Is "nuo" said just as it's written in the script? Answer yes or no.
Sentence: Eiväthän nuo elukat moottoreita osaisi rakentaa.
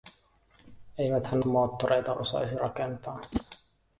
no